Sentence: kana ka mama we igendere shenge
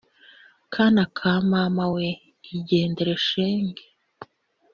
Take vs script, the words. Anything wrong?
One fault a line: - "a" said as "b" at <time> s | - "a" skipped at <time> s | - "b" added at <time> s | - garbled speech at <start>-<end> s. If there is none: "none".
none